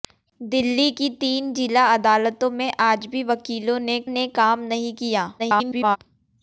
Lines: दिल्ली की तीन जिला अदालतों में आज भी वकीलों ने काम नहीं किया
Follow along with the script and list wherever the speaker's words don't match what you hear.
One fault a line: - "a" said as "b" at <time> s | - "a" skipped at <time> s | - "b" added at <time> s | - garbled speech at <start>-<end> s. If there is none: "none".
- "ने" added at 4.1 s
- garbled speech at 5.4-6.0 s